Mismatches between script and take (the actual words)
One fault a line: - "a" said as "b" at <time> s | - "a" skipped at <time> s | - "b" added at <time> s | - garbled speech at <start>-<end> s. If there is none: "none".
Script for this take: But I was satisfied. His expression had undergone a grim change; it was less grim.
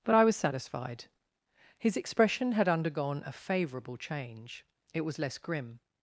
- "grim" said as "favourable" at 3.3 s